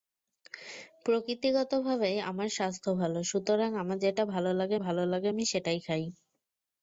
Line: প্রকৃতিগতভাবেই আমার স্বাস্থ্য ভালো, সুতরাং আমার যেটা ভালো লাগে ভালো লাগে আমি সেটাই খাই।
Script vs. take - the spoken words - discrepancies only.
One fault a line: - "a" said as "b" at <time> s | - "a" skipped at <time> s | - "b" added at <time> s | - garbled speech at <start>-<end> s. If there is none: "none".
none